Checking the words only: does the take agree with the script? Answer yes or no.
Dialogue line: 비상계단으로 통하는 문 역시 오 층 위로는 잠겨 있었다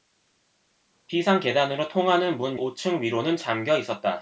no